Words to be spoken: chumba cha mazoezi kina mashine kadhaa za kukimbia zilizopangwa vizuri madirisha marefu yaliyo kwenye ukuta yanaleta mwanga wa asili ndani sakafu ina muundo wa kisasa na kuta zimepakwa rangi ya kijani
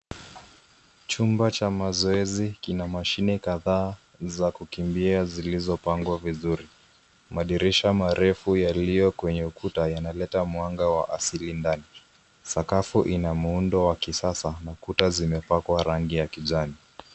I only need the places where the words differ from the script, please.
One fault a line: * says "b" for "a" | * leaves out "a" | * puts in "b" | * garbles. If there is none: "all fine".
all fine